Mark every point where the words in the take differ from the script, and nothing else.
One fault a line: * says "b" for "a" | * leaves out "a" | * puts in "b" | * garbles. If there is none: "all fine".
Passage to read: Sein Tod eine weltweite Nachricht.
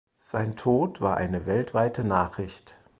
* puts in "war"